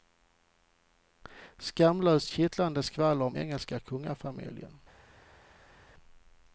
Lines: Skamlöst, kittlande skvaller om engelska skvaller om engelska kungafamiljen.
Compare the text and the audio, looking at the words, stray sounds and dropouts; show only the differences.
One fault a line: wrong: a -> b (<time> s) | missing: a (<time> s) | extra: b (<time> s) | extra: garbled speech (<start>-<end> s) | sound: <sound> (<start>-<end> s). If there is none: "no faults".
missing: skvaller om engelska (3.8 s)